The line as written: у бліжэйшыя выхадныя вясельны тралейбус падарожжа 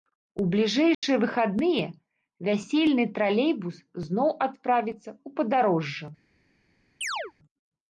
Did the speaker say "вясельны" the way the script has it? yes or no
yes